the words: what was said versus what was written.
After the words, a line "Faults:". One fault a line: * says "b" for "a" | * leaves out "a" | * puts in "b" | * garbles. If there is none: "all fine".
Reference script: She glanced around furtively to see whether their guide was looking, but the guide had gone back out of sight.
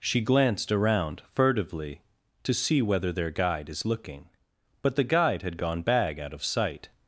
She glanced around furtively to see whether their guide is looking, but the guide had gone bag out of sight.
Faults:
* says "is" for "was"
* says "bag" for "back"